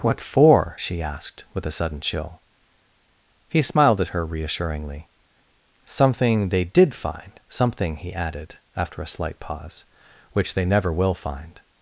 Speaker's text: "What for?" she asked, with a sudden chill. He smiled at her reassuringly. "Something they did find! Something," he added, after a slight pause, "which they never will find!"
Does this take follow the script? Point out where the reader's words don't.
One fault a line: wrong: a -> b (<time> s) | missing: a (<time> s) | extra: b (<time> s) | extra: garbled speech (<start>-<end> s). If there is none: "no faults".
no faults